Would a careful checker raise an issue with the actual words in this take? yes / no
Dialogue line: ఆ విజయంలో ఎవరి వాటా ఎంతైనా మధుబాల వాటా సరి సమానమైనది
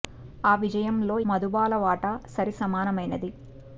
yes